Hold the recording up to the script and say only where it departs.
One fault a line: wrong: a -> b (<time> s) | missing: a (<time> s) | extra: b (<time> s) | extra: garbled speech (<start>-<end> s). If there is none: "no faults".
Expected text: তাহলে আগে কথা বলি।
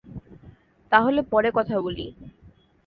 wrong: আগে -> পরে (1.2 s)